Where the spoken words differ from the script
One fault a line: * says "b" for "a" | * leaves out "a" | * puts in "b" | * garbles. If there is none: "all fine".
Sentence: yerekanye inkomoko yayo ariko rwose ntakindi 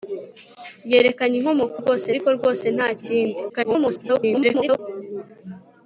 * says "rwose" for "yayo"
* garbles